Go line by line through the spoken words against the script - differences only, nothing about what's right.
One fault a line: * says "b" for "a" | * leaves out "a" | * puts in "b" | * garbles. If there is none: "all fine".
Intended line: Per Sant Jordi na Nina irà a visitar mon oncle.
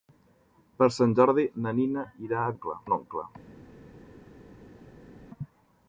* says "oncle" for "visitar"